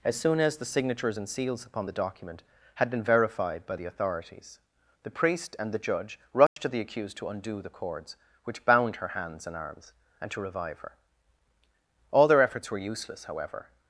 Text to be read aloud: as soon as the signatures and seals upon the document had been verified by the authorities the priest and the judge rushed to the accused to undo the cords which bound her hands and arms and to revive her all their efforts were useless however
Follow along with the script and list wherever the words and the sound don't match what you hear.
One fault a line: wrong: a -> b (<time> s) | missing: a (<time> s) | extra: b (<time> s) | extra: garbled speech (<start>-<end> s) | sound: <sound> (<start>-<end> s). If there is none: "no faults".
sound: dropout (6.5-6.6 s)